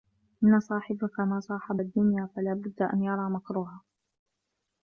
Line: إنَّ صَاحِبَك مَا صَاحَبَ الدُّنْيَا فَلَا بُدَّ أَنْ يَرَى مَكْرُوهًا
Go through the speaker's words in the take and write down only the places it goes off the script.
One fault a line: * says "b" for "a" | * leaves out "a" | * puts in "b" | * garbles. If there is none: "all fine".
all fine